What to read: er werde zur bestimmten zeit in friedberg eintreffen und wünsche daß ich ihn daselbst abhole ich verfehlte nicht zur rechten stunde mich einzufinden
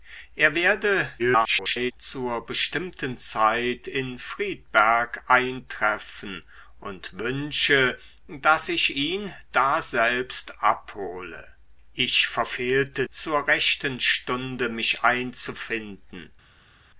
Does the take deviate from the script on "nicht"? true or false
true